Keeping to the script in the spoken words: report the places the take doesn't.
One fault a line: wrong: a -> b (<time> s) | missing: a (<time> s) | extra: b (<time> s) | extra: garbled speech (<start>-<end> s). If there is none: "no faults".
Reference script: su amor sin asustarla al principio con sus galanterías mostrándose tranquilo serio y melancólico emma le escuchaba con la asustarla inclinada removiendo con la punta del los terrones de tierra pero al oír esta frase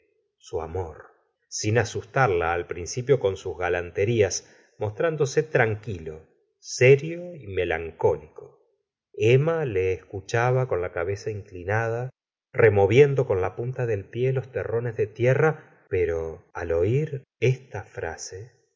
wrong: asustarla -> cabeza (10.9 s)
extra: pie (14.0 s)